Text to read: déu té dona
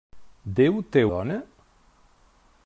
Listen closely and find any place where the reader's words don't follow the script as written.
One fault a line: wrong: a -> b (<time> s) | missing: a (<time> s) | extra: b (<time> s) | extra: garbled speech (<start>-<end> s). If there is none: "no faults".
no faults